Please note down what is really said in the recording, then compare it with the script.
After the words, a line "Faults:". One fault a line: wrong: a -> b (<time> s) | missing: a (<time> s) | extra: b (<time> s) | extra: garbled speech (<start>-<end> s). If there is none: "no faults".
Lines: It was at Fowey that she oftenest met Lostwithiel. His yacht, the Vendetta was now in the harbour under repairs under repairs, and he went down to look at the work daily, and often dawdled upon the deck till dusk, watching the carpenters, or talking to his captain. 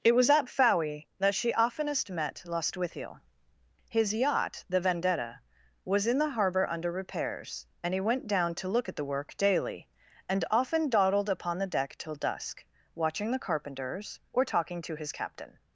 It was at Fowey that she oftenest met Lostwithiel. His yacht, the Vendetta was in the harbour under repairs, and he went down to look at the work daily, and often dawdled upon the deck till dusk, watching the carpenters, or talking to his captain.
Faults:
missing: now (6.1 s)
missing: under repairs (7.7 s)